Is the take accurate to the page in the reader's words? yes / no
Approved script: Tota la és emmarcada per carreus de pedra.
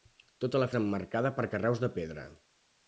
yes